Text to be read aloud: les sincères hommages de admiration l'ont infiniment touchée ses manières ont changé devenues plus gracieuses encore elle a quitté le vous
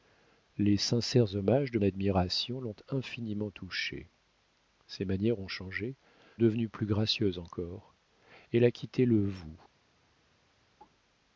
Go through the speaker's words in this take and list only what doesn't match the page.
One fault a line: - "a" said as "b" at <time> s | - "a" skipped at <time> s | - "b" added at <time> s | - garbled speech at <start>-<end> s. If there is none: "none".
none